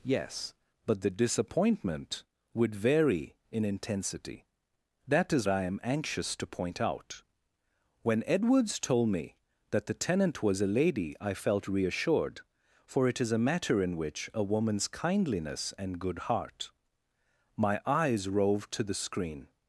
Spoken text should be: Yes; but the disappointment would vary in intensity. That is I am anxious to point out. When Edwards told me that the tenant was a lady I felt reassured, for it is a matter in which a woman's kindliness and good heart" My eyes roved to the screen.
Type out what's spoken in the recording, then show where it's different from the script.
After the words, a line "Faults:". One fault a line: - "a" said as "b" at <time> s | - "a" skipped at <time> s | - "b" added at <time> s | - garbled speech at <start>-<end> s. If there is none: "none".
Yes; but the disappointment would vary in intensity. That is I am anxious to point out. When Edwards told me that the tenant was a lady I felt reassured, for it is a matter in which a woman's kindliness and good heart" My eyes roved to the screen.
Faults:
none